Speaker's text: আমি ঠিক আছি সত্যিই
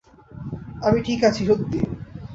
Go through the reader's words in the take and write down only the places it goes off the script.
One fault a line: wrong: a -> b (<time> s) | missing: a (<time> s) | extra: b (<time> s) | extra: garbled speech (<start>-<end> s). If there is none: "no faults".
no faults